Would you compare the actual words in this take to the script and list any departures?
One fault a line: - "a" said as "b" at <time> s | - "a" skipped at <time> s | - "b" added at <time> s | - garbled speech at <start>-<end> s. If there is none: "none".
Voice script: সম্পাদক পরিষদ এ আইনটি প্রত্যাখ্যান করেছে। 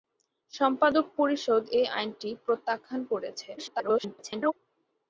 - garbled speech at 3.6-4.5 s